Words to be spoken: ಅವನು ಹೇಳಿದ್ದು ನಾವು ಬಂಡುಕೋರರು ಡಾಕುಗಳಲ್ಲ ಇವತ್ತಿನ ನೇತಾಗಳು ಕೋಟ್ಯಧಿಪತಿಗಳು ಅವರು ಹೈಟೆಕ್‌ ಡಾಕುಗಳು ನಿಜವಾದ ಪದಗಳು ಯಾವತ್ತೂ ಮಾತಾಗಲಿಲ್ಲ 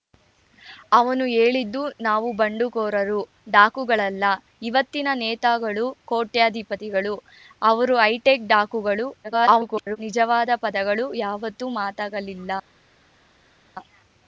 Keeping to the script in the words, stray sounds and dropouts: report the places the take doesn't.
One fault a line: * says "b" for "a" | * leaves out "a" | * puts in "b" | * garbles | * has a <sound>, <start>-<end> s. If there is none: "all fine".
* garbles